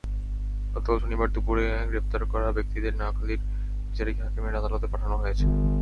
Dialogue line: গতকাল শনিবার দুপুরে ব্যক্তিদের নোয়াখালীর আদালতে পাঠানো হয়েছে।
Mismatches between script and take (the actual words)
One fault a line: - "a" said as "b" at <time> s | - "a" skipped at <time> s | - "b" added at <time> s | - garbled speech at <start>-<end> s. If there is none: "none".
- "গ্রেপ্তার করা" added at 1.9 s
- "বিচারিক হাকিমের" added at 3.9 s